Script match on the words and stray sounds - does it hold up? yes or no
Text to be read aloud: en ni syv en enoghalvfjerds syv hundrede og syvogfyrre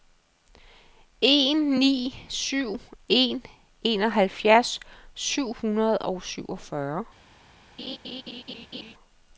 no